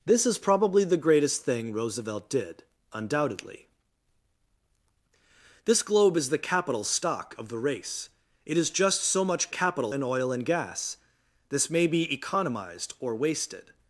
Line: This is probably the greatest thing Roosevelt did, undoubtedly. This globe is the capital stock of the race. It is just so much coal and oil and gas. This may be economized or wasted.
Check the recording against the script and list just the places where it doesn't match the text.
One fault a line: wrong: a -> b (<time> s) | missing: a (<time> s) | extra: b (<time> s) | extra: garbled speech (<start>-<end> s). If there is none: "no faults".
wrong: coal -> capital (9.5 s)